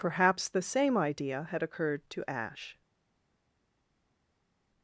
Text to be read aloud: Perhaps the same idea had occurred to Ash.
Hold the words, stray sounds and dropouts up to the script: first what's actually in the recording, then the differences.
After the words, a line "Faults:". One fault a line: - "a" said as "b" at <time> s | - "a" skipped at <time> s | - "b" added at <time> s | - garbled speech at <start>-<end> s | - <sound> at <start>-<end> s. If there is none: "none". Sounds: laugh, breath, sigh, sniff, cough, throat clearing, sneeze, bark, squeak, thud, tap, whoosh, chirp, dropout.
Perhaps the same idea had occurred to Ash.
Faults:
none